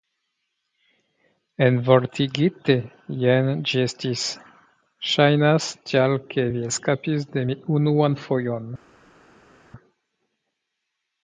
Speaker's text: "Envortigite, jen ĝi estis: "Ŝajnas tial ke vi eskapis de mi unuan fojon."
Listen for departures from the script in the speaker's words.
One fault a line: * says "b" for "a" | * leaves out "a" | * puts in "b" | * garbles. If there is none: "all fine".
all fine